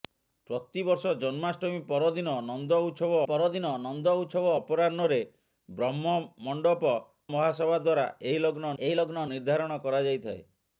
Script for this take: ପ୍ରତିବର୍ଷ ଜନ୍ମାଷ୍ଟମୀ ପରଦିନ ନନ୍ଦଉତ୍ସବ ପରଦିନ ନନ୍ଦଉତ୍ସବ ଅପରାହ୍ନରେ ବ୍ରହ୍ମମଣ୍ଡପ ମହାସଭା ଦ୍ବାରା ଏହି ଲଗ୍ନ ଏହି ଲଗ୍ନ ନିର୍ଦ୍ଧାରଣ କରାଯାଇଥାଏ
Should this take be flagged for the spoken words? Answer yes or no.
no